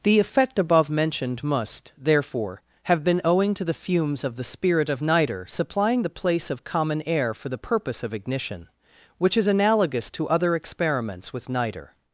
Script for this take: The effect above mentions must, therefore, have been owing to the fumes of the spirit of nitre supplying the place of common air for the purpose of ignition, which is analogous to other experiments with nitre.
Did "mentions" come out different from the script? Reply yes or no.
yes